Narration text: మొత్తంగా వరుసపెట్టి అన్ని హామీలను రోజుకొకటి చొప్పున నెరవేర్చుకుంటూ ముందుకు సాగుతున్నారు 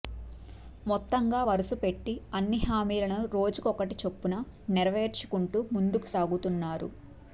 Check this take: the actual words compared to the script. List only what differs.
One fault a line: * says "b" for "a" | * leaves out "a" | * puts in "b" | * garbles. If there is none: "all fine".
all fine